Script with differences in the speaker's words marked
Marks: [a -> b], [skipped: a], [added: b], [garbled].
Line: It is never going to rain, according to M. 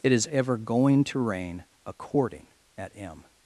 It is [never -> ever] going to rain, according [to -> at] M.